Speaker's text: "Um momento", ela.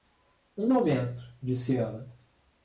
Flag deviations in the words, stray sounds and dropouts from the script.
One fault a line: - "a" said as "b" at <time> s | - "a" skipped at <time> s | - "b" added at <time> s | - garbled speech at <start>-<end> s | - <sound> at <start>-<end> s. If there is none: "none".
- "disse" added at 1.4 s